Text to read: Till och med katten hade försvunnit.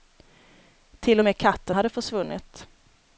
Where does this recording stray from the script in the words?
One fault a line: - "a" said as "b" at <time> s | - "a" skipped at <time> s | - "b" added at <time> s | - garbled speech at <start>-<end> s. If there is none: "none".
none